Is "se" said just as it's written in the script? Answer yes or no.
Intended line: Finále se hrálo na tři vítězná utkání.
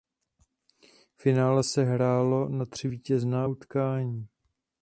yes